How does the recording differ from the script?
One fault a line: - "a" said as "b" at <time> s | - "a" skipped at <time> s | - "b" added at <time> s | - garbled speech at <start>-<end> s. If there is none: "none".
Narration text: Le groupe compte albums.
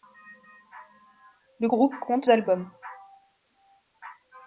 none